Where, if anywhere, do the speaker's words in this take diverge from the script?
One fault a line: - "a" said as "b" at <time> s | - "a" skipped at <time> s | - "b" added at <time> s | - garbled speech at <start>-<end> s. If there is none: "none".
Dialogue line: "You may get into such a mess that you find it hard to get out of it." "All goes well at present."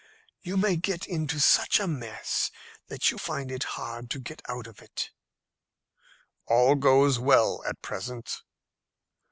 none